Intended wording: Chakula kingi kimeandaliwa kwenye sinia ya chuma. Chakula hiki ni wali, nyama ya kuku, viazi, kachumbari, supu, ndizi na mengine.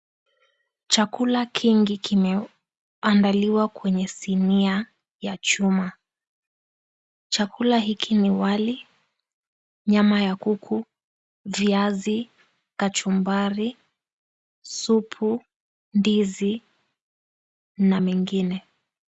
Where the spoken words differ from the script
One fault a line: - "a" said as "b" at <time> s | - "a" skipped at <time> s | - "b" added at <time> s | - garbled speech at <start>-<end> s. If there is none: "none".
none